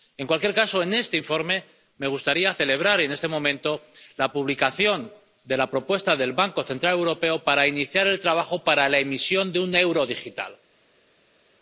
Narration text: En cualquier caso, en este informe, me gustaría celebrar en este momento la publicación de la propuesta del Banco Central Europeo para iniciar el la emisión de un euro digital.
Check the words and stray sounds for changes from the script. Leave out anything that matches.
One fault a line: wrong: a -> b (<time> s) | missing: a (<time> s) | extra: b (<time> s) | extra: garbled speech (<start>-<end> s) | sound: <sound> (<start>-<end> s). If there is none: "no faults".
extra: trabajo para (8.2 s)